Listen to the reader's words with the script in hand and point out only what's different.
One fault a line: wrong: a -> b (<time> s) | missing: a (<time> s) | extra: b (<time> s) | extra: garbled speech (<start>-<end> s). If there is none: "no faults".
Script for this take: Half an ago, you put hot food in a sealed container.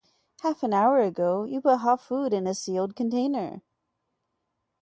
extra: hour (0.7 s)